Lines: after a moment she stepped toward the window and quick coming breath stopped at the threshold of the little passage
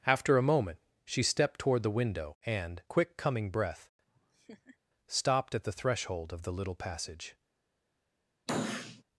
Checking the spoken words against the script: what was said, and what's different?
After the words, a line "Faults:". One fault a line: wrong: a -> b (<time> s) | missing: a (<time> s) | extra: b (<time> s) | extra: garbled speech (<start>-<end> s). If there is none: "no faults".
after a moment she stepped toward the window and quick coming breath stopped at the threshold of the little passage
Faults:
no faults